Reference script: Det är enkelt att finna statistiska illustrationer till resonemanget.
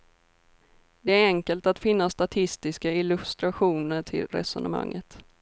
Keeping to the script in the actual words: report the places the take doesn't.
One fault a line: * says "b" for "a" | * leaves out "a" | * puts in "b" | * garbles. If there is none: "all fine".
all fine